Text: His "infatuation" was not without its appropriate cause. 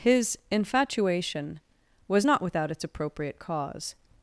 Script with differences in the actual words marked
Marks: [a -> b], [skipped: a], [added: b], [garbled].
His "infatuation" was not without its appropriate cause.